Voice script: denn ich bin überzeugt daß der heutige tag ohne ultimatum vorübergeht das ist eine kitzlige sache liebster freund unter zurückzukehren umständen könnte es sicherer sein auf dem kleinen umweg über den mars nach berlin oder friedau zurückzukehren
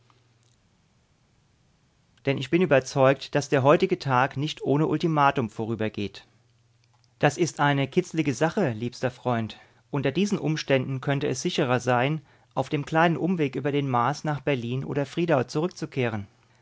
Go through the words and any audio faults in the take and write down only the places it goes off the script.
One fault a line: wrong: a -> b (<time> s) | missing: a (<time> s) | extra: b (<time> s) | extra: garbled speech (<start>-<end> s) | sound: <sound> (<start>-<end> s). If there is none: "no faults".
extra: nicht (4.4 s)
wrong: zurückzukehren -> diesen (10.1 s)